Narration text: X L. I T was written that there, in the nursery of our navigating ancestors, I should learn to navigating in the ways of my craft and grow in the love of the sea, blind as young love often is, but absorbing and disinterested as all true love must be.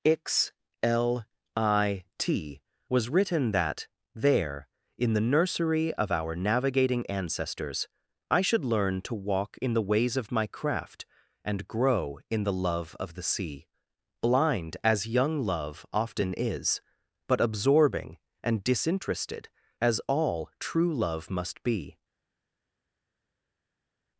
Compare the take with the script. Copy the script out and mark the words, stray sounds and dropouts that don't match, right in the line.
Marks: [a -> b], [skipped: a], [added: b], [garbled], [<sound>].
X L. I T was written that there, in the nursery of our navigating ancestors, I should learn to [navigating -> walk] in the ways of my craft and grow in the love of the sea, blind as young love often is, but absorbing and disinterested as all true love must be.